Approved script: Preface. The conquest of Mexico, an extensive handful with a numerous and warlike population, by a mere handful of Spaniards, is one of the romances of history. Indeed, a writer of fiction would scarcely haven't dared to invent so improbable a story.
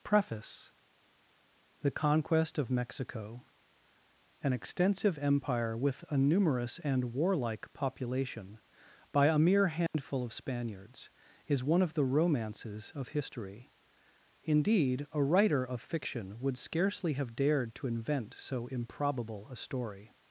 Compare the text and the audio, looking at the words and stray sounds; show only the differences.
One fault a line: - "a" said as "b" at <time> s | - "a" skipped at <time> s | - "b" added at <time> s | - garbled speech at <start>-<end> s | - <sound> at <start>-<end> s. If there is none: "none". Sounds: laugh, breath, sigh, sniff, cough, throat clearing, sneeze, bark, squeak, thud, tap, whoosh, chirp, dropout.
- "handful" said as "empire" at 5.2 s
- dropout at 9.9-9.9 s
- "haven't" said as "have" at 17.1 s